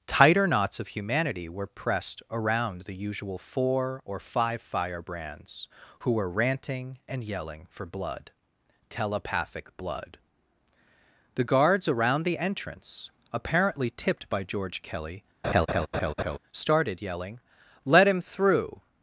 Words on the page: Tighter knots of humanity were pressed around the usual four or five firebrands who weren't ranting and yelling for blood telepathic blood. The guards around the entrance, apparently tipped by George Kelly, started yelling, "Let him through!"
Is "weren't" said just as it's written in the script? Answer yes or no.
no